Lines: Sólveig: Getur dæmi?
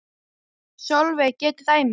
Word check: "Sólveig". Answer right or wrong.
right